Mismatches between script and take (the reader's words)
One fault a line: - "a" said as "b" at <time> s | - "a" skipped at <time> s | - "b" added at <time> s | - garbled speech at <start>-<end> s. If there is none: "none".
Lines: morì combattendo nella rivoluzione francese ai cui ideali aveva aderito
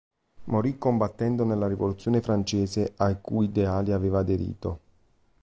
none